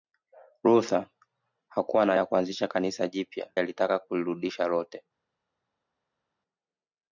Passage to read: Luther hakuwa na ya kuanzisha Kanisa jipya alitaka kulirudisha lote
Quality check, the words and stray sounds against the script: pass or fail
pass